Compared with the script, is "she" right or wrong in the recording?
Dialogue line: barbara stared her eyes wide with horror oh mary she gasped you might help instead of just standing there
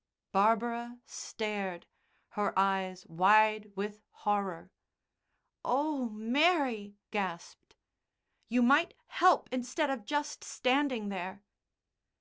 wrong